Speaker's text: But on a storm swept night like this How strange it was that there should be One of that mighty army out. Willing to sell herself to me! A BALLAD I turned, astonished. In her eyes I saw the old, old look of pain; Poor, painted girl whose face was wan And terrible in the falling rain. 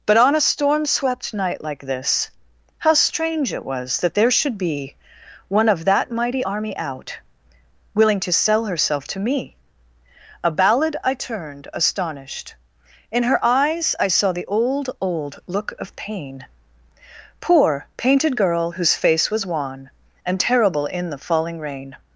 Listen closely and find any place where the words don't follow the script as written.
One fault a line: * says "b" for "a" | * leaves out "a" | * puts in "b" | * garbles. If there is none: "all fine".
all fine